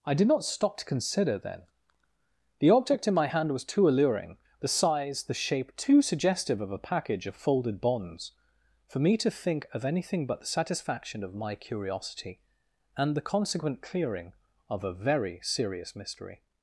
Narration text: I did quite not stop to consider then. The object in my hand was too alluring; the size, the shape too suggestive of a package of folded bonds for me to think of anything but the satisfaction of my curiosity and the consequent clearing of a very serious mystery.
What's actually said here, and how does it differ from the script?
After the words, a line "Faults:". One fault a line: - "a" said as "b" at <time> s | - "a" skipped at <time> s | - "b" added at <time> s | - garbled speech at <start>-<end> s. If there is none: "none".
I did not stop to consider then. The object in my hand was too alluring; the size, the shape too suggestive of a package of folded bonds for me to think of anything but the satisfaction of my curiosity and the consequent clearing of a very serious mystery.
Faults:
- "quite" skipped at 0.3 s